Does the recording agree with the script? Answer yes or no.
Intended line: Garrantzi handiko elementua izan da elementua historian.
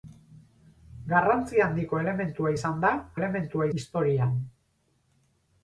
yes